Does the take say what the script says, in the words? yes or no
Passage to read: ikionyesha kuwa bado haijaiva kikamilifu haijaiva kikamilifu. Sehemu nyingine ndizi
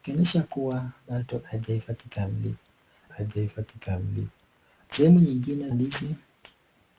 yes